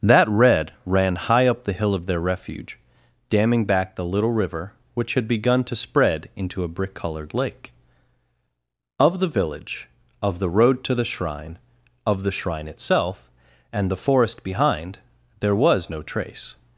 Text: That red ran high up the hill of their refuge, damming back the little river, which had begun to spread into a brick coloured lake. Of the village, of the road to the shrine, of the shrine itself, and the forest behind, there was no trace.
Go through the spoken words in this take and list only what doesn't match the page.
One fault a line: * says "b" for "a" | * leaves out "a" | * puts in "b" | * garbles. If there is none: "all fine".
all fine